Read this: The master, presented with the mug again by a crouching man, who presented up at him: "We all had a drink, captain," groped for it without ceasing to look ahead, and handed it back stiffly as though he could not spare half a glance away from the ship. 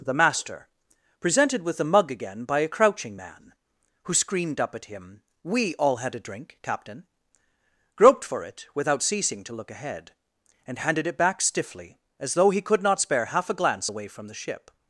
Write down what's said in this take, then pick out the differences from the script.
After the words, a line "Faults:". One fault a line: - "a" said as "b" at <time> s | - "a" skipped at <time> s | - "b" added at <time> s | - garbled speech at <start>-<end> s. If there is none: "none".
The master, presented with the mug again by a crouching man, who screamed up at him: "We all had a drink, captain," groped for it without ceasing to look ahead, and handed it back stiffly as though he could not spare half a glance away from the ship.
Faults:
- "presented" said as "screamed" at 4.1 s